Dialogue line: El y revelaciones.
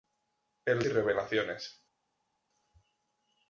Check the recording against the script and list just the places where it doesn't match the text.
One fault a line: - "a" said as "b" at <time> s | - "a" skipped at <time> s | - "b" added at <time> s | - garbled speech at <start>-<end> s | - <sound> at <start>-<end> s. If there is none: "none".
none